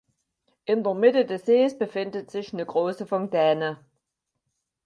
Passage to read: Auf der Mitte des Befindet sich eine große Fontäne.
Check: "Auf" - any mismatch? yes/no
yes